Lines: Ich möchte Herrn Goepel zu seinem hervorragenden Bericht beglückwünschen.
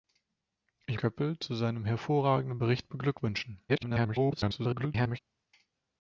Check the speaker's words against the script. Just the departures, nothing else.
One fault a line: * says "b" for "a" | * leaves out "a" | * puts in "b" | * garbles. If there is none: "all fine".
* leaves out "möchte Herrn"
* garbles